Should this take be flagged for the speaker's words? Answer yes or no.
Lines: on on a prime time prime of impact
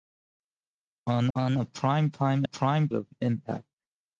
no